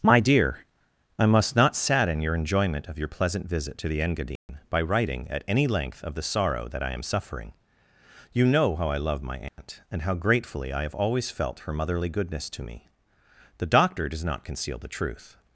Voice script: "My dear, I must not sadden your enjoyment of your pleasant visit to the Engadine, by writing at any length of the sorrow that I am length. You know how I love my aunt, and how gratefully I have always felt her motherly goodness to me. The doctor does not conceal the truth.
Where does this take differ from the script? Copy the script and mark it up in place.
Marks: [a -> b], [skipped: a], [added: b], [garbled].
"My dear, I must not sadden your enjoyment of your pleasant visit to the Engadine, by writing at any length of the sorrow that I am [length. -> suffering] You know how I love my aunt, and how gratefully I have always felt her motherly goodness to me. The doctor does not conceal the truth.